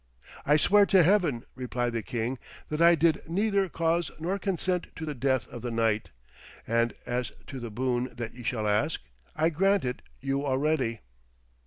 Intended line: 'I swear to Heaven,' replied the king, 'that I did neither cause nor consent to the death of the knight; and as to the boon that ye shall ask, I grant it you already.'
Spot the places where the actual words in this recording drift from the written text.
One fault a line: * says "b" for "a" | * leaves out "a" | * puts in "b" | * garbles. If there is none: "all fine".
all fine